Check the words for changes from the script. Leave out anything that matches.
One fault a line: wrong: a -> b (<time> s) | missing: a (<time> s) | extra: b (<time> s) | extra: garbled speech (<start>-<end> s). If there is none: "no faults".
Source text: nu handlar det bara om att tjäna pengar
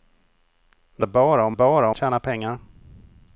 missing: handlar (1.1 s)
wrong: att -> bara (1.5 s)